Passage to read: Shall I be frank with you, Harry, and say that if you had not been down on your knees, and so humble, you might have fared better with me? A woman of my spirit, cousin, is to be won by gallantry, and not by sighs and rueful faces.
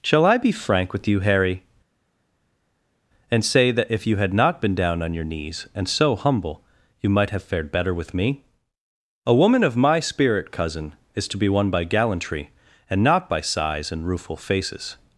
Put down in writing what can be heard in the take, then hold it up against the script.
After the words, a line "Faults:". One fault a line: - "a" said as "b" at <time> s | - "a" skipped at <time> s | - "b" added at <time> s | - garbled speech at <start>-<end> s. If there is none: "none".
Shall I be frank with you, Harry, and say that if you had not been down on your knees, and so humble, you might have fared better with me? A woman of my spirit, cousin, is to be won by gallantry, and not by sighs and rueful faces.
Faults:
none